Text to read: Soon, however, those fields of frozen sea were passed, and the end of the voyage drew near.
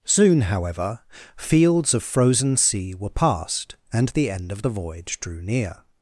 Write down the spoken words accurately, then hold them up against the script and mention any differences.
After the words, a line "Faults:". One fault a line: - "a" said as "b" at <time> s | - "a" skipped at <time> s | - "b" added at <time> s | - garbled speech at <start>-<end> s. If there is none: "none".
Soon, however, fields of frozen sea were passed, and the end of the voyage drew near.
Faults:
- "those" skipped at 1.0 s